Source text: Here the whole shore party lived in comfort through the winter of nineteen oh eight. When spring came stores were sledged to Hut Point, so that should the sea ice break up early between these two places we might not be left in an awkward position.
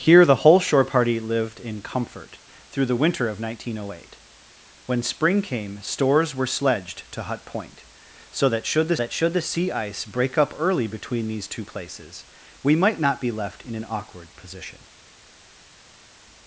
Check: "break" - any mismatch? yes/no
no